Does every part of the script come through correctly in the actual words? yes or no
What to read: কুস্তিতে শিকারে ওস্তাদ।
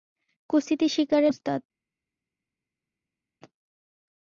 yes